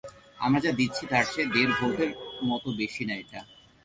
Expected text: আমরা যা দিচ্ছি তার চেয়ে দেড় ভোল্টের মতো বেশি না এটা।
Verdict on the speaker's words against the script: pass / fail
pass